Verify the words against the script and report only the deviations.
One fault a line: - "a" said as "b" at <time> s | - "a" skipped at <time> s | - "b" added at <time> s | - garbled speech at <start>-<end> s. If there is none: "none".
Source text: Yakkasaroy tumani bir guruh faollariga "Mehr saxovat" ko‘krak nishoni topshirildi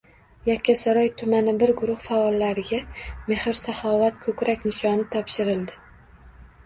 none